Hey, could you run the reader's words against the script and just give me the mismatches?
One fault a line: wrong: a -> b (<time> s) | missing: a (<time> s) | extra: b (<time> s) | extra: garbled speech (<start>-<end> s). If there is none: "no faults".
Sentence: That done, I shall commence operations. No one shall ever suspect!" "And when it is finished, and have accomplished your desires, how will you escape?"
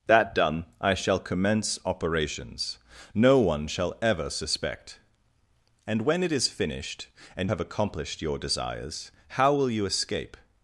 no faults